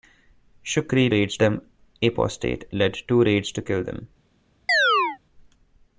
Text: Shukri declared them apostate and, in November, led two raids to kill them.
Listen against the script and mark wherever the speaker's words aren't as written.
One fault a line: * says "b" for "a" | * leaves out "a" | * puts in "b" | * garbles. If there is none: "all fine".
* says "raids" for "declared"
* leaves out "and in November"